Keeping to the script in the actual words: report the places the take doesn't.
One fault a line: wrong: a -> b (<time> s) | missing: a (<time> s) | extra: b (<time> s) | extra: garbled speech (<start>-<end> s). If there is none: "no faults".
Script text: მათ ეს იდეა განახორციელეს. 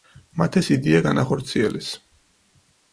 no faults